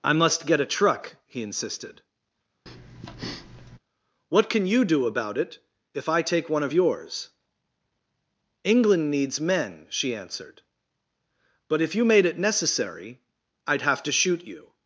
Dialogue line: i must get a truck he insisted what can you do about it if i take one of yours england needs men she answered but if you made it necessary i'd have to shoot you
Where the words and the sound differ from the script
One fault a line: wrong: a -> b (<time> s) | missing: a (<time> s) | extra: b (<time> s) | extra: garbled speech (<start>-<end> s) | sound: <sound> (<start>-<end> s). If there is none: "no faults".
sound: breath (2.7-3.8 s)